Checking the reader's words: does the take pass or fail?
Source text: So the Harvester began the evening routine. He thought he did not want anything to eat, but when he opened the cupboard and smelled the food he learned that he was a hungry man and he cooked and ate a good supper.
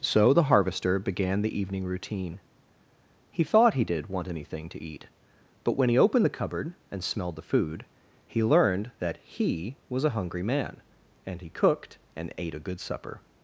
fail